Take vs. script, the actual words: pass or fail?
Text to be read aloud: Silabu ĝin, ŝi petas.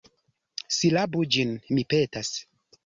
fail